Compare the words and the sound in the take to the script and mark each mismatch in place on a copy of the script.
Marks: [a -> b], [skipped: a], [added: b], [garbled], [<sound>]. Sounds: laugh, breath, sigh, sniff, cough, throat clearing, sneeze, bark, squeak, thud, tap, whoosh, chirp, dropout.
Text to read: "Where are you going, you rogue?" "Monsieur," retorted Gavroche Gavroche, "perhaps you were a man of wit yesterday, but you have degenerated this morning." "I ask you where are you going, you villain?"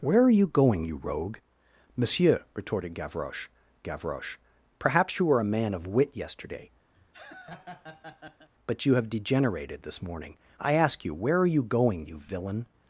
"Where are you going, you rogue?" "Monsieur," retorted Gavroche Gavroche, "perhaps you were a man of wit yesterday, [laugh] but you have degenerated this morning." "I ask you where are you going, you villain?"